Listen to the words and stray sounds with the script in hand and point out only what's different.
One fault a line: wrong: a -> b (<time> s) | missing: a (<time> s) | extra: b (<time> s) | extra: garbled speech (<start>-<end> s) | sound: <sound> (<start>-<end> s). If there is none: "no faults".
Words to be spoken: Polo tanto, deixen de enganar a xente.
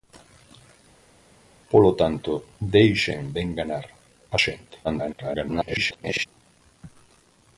extra: garbled speech (4.8-6.3 s)